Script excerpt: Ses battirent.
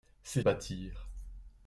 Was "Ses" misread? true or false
false